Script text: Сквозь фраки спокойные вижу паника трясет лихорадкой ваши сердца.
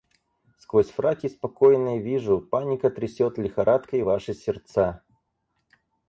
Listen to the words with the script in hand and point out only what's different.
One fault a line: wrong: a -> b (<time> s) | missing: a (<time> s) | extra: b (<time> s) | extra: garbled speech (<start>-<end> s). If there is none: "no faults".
no faults